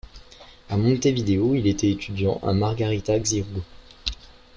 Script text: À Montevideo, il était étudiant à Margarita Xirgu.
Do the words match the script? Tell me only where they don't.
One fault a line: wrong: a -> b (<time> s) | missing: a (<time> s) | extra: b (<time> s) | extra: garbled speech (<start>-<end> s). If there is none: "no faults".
no faults